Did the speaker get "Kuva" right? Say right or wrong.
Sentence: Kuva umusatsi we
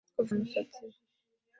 right